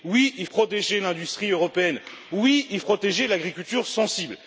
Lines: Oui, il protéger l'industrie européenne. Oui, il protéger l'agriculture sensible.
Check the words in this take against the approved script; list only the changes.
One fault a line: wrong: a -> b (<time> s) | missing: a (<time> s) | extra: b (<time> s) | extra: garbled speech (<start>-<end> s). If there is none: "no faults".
no faults